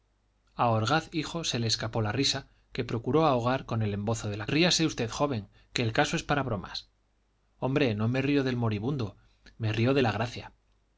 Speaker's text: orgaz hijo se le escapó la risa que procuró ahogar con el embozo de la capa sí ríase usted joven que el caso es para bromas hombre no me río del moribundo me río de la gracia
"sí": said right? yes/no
no